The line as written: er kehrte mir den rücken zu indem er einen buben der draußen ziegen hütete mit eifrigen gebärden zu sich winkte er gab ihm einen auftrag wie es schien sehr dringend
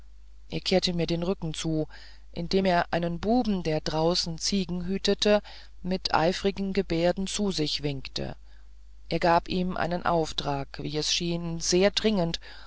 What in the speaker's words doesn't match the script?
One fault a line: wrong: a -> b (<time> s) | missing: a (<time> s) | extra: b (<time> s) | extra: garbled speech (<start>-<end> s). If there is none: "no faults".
no faults